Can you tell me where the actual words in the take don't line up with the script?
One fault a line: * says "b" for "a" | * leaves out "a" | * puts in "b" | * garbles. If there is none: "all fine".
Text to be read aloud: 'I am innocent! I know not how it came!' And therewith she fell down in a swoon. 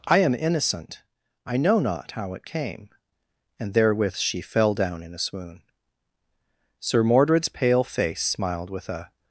* puts in "Sir Mordred's pale face smiled with a"